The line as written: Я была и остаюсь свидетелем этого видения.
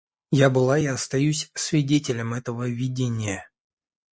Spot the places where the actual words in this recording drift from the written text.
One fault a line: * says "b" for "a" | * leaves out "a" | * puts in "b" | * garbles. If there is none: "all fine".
all fine